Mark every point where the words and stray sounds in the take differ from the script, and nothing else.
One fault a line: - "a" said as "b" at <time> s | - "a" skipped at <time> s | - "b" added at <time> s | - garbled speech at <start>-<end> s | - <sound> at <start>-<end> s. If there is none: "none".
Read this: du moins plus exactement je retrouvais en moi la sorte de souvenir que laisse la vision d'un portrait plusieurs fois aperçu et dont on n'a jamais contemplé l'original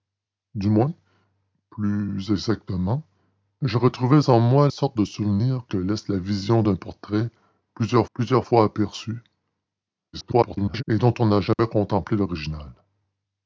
- "la" skipped at 4.7 s
- "plusieurs" added at 8.1 s
- garbled speech at 10.1-10.8 s
- dropout at 11.5-11.6 s